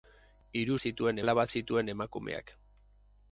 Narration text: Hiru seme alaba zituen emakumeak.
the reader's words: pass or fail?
fail